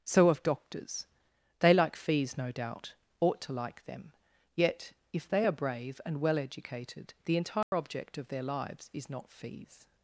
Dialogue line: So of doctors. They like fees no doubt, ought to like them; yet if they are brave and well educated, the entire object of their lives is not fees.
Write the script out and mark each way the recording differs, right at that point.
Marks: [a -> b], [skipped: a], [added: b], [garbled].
So of doctors. They like fees no doubt, ought to like them; yet if they are brave and well educated, the entire object of their lives is not fees.